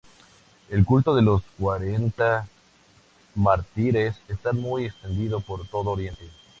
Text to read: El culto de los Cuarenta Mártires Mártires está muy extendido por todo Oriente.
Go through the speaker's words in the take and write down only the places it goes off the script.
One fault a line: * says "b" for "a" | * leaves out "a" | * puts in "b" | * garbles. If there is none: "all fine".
* leaves out "Mártires"